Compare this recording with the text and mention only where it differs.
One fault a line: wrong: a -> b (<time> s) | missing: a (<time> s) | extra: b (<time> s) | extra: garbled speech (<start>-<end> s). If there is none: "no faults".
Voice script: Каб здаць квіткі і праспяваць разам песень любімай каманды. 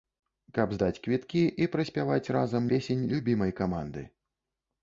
no faults